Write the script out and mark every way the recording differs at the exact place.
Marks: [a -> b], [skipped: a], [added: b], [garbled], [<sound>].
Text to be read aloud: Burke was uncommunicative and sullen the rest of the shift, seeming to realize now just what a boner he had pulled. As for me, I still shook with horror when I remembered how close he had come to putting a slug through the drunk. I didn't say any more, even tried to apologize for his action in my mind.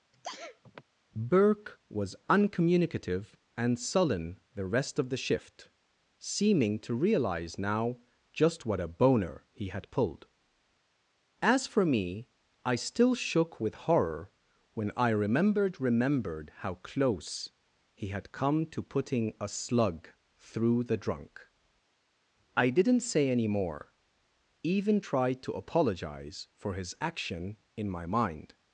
[sneeze] Burke was uncommunicative and sullen the rest of the shift, seeming to realize now just what a boner he had pulled. As for me, I still shook with horror when I remembered [added: remembered] how close he had come to putting a slug through the drunk. I didn't say any more, even tried to apologize for his action in my mind.